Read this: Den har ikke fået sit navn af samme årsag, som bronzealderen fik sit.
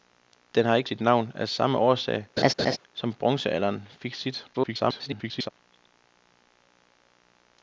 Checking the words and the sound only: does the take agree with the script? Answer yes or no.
no